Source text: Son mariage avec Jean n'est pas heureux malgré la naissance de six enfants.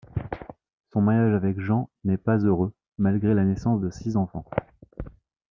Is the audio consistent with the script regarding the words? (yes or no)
yes